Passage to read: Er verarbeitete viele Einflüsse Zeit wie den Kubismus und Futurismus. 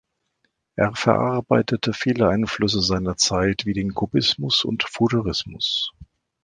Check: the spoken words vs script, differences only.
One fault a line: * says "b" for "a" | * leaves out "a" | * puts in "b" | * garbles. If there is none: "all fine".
* puts in "seiner"